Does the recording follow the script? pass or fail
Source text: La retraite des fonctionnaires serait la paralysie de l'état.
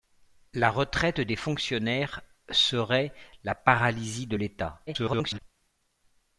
fail